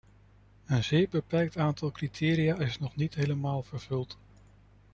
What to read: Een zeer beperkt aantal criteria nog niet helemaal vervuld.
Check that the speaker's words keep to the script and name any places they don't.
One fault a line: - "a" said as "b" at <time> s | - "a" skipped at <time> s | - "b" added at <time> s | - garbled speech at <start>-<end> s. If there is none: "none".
- "is" added at 2.6 s